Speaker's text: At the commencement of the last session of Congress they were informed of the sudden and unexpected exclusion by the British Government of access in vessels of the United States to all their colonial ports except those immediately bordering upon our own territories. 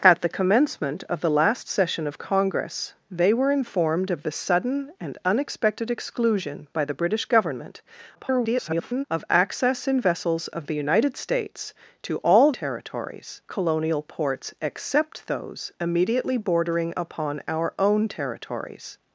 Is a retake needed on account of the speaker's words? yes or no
yes